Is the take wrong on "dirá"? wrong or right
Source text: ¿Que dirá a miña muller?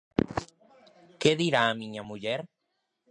right